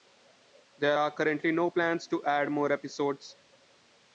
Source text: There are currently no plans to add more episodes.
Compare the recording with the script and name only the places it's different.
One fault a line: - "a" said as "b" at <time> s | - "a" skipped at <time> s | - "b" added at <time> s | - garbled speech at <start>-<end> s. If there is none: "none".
none